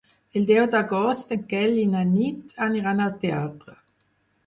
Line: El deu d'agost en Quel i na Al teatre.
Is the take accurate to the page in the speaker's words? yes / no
no